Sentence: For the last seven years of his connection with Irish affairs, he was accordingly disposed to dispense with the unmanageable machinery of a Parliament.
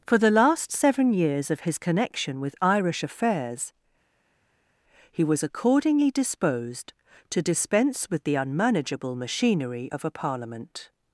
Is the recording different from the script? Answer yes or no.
no